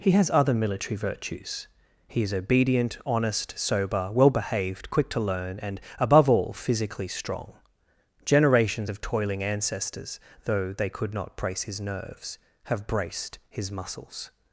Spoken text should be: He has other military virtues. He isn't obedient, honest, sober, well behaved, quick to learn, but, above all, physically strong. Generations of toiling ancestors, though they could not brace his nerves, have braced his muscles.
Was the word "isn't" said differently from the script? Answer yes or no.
yes